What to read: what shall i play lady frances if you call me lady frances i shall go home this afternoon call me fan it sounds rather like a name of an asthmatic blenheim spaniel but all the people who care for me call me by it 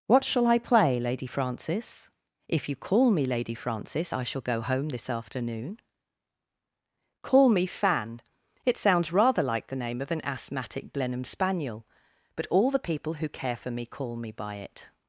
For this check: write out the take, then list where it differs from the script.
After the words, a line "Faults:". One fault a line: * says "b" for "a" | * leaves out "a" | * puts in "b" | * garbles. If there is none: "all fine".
what shall i play lady frances if you call me lady frances i shall go home this afternoon call me fan it sounds rather like the name of an asthmatic blenheim spaniel but all the people who care for me call me by it
Faults:
* says "the" for "a"